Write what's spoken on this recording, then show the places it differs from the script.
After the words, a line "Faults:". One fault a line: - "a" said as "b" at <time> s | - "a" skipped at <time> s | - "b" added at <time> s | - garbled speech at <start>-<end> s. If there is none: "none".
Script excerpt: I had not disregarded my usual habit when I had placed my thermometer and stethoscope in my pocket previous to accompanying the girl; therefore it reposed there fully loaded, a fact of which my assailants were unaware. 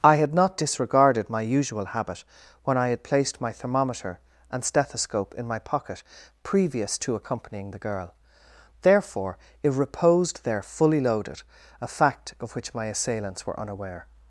I had not disregarded my usual habit when I had placed my thermometer and stethoscope in my pocket previous to accompanying the girl; therefore it reposed there fully loaded, a fact of which my assailants were unaware.
Faults:
none